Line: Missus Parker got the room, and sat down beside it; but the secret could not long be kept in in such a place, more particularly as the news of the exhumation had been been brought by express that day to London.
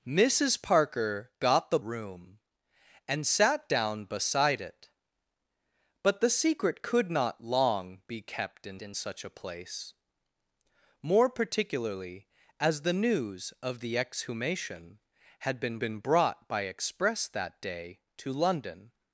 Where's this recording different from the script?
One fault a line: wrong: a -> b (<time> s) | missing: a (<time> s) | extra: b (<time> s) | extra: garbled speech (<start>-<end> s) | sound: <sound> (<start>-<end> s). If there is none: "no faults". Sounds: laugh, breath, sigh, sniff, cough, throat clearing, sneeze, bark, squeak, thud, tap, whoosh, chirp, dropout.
no faults